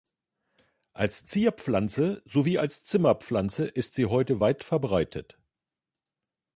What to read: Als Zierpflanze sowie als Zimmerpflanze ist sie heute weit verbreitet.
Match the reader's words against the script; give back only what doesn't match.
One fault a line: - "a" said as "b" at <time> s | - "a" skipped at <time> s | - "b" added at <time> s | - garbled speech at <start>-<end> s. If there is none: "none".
none